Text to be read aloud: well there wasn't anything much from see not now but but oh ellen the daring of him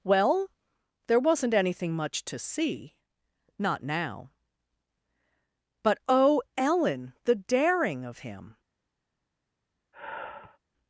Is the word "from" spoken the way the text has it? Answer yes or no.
no